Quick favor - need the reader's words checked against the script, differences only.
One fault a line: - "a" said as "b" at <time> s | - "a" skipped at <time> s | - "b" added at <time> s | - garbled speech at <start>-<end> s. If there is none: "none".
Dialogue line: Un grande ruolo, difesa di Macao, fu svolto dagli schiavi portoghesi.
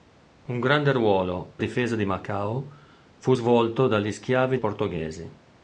none